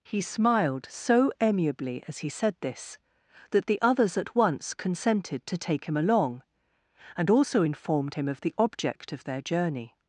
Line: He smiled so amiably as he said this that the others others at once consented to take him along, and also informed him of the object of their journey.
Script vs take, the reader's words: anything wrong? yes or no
yes